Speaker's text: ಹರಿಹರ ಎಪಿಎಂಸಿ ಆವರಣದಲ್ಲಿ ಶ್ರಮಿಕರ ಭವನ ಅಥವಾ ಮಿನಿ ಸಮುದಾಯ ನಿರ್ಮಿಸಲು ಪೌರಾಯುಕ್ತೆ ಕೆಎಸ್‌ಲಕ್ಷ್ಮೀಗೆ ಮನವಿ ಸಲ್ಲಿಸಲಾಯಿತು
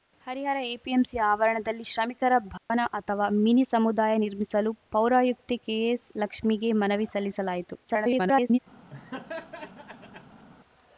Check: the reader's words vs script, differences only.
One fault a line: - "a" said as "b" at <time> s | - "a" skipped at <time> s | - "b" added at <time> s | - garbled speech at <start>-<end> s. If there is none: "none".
- garbled speech at 7.8-8.6 s